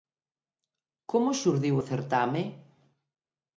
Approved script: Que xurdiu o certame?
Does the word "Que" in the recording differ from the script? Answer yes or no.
yes